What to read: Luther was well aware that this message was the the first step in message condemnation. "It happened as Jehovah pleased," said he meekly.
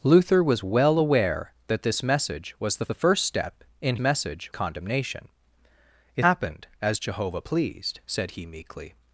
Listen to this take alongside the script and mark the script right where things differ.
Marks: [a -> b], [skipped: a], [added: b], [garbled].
Luther was well aware that this message was the the first step in message condemnation. "It happened as Jehovah pleased," said he meekly.